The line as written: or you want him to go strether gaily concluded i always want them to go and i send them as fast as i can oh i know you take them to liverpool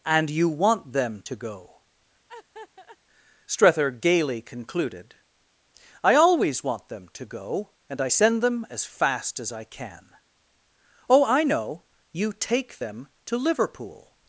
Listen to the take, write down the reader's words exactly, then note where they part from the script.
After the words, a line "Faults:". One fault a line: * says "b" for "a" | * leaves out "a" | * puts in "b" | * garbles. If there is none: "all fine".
and you want them to go strether gaily concluded i always want them to go and i send them as fast as i can oh i know you take them to liverpool
Faults:
* says "and" for "or"
* says "them" for "him"